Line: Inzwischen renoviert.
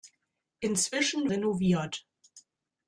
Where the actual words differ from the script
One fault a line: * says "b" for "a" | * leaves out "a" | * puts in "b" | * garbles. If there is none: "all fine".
all fine